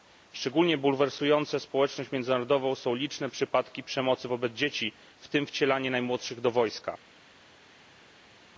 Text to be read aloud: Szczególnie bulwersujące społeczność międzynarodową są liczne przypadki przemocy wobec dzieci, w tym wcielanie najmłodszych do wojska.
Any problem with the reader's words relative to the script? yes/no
no